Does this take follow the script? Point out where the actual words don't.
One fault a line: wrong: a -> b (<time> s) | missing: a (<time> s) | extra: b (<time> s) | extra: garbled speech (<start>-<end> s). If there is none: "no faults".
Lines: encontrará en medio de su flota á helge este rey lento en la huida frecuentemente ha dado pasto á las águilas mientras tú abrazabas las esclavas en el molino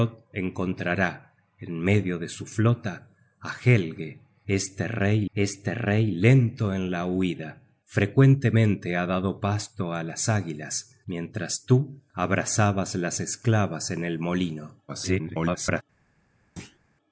extra: este rey (5.3 s)
extra: garbled speech (14.9-15.8 s)